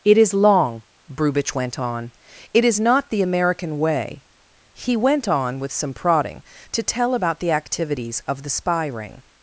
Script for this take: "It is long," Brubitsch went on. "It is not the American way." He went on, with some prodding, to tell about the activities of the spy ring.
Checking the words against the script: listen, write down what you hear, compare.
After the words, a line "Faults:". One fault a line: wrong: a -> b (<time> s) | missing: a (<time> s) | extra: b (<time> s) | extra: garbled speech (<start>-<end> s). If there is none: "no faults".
"It is long," Brubitsch went on. "It is not the American way." He went on, with some prodding, to tell about the activities of the spy ring.
Faults:
no faults